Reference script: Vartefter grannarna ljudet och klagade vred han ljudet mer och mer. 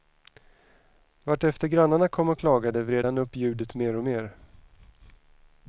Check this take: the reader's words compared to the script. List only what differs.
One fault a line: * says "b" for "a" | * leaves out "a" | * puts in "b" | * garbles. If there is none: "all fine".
* says "kom" for "ljudet"
* puts in "upp"